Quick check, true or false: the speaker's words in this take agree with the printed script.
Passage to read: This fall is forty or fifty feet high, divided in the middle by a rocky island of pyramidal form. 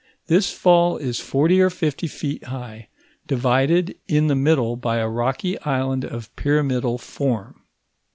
true